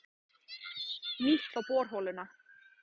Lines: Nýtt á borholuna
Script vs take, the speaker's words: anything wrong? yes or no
no